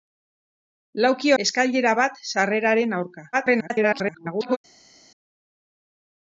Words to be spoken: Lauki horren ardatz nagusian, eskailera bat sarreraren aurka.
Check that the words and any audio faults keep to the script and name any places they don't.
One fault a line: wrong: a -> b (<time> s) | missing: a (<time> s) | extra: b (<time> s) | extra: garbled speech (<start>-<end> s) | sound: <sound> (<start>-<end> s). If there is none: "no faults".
missing: horren ardatz nagusian (1.3 s)
extra: garbled speech (3.3-4.6 s)